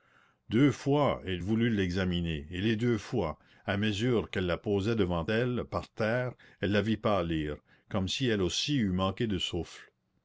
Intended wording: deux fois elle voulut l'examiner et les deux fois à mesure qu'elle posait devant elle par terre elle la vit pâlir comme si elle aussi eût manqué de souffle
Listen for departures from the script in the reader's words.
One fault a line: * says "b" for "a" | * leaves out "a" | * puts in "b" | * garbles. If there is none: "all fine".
* puts in "la"